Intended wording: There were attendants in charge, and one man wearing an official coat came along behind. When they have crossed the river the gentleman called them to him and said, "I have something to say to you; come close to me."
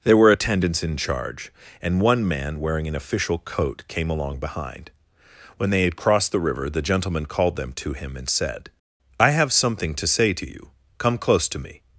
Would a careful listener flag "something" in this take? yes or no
no